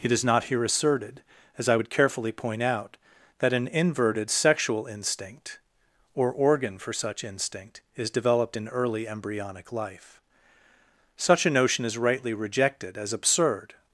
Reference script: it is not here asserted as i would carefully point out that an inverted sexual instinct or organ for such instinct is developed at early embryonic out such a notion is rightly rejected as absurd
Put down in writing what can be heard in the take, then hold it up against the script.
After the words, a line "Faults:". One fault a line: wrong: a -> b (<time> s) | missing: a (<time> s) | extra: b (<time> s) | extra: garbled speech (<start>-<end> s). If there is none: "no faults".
it is not here asserted as i would carefully point out that an inverted sexual instinct or organ for such instinct is developed in early embryonic life such a notion is rightly rejected as absurd
Faults:
wrong: at -> in (8.5 s)
wrong: out -> life (9.7 s)